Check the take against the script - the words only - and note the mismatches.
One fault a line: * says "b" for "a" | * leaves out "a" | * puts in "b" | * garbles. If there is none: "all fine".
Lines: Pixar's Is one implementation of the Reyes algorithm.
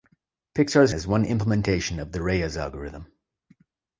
all fine